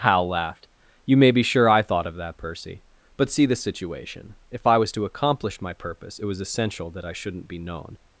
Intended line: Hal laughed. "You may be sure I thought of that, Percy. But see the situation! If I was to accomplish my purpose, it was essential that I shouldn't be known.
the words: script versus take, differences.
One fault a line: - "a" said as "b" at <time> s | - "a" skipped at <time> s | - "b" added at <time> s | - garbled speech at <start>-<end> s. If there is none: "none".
none